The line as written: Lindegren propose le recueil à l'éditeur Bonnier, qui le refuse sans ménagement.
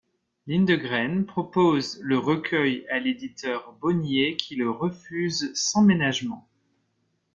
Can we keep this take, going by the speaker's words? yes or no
yes